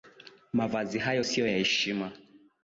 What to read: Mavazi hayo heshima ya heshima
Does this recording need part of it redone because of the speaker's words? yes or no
yes